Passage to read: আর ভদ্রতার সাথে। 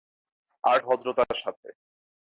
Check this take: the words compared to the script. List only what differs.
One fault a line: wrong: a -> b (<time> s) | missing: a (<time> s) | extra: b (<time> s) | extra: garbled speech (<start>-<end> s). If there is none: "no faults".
no faults